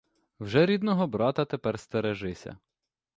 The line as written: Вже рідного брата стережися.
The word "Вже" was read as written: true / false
true